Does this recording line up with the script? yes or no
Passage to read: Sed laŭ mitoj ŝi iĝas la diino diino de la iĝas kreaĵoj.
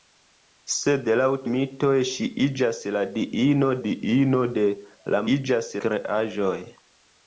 yes